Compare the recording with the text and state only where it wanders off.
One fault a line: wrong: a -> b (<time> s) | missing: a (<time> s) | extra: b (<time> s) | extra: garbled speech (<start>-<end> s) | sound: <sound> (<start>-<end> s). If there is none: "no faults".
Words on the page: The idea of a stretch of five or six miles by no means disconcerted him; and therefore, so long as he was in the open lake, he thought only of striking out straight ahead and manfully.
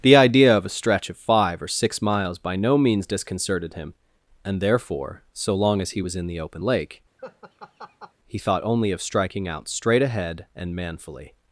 sound: laugh (7.2-8.1 s)